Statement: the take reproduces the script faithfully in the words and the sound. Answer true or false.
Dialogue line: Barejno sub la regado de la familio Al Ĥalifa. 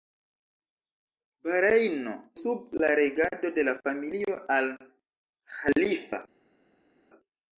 true